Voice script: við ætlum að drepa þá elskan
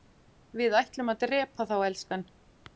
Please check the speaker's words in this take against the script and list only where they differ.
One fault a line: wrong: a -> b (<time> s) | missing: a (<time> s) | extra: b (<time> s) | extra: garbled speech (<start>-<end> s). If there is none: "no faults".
no faults